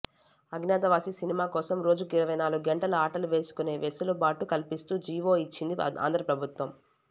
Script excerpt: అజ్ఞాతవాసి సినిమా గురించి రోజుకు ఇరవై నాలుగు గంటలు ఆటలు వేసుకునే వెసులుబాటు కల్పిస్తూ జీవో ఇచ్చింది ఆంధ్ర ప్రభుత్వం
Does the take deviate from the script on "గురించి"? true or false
true